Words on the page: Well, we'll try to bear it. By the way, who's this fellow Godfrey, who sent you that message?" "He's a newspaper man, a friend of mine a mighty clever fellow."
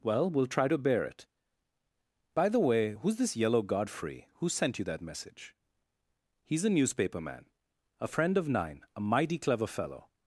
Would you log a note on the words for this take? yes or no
yes